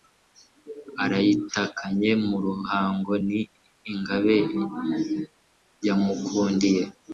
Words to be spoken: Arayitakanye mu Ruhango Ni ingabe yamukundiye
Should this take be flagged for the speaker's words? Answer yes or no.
no